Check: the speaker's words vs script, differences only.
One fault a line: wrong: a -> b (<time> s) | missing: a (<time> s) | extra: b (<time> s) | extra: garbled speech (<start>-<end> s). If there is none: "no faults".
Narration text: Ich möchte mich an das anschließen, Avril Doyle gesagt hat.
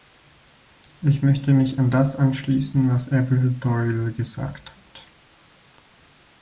extra: was (2.9 s)